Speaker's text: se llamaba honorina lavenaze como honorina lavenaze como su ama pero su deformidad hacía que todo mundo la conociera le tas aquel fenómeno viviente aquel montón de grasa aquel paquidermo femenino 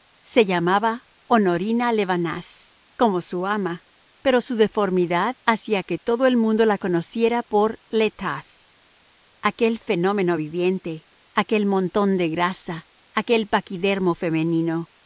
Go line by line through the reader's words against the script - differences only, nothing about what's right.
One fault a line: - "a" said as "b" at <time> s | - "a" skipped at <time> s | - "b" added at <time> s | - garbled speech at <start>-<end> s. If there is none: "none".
- "honorina lavenaze como" skipped at 3.2 s
- "el" added at 6.3 s
- "por" added at 7.4 s